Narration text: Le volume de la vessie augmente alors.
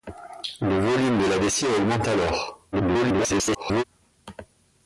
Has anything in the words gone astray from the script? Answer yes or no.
yes